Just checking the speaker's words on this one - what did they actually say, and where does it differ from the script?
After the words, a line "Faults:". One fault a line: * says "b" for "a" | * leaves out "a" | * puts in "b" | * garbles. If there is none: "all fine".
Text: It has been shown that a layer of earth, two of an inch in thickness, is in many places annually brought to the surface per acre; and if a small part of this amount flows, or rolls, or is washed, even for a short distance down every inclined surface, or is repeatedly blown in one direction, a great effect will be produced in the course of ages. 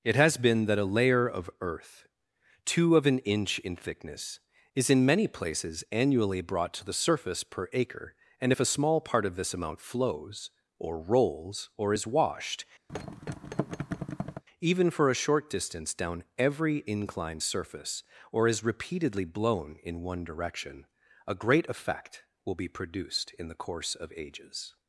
It has been that a layer of earth, two of an inch in thickness, is in many places annually brought to the surface per acre; and if a small part of this amount flows, or rolls, or is washed, even for a short distance down every inclined surface, or is repeatedly blown in one direction, a great effect will be produced in the course of ages.
Faults:
* leaves out "shown"